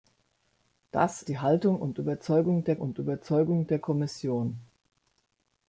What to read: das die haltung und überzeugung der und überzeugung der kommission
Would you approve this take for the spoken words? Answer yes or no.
yes